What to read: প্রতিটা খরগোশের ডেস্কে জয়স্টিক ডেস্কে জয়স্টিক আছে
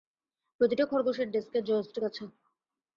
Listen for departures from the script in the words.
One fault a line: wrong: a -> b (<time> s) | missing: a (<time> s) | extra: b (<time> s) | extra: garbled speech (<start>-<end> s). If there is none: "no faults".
missing: ডেস্কে জয়স্টিক (2.0 s)